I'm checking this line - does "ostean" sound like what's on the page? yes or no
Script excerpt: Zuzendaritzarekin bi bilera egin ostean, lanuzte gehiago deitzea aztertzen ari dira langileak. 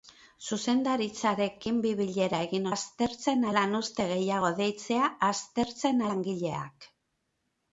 no